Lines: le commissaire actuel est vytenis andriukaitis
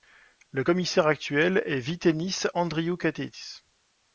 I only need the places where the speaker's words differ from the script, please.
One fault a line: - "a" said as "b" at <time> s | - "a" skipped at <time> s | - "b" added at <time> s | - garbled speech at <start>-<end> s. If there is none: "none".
none